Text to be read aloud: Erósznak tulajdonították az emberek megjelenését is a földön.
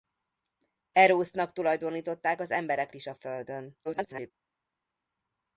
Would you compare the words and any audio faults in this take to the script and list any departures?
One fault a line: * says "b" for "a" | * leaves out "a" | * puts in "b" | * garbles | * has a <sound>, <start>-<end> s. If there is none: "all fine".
* leaves out "megjelenését"
* garbles